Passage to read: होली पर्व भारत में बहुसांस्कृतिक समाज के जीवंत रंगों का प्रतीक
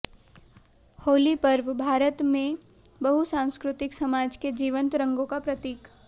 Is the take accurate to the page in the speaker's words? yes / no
yes